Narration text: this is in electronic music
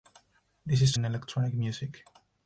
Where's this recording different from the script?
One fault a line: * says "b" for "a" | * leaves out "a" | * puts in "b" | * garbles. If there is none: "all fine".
all fine